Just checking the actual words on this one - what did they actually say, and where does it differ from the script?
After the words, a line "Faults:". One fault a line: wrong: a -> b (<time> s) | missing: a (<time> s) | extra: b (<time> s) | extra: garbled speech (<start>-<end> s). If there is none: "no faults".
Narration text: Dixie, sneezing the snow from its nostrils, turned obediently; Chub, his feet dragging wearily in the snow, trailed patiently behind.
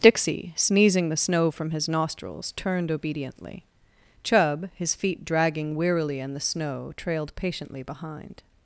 Dixie, sneezing the snow from his nostrils, turned obediently; Chub, his feet dragging wearily in the snow, trailed patiently behind.
Faults:
wrong: its -> his (1.7 s)